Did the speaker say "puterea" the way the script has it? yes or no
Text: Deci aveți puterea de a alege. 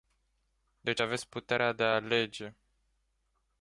yes